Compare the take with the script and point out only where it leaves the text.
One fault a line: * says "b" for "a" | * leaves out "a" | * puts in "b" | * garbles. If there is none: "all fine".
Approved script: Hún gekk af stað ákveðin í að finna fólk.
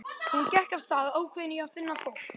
all fine